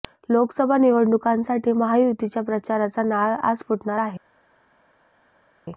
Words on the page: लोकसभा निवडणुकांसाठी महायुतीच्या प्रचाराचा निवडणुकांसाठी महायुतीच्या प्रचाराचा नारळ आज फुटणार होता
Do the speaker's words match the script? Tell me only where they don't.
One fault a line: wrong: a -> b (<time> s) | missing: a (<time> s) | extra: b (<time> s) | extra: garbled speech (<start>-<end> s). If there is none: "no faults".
missing: निवडणुकांसाठी महायुतीच्या प्रचाराचा (3.0 s)
wrong: होता -> आहे (4.0 s)